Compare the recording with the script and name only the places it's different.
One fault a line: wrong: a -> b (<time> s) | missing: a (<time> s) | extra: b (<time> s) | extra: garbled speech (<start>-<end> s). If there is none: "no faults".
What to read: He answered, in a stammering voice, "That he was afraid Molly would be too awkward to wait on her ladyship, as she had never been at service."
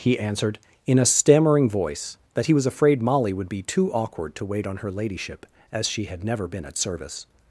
no faults